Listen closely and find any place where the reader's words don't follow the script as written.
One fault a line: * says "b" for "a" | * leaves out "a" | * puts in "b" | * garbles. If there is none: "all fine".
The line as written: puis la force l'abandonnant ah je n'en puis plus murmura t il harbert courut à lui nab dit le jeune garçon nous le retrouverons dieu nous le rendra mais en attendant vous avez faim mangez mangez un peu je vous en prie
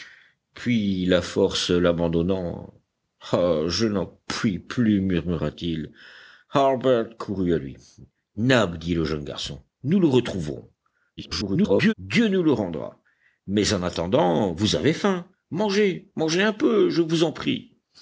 * garbles